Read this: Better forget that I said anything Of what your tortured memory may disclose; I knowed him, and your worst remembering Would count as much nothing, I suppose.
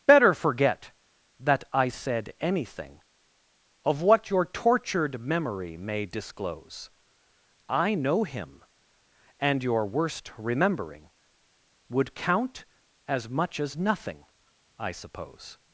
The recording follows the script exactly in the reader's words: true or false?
false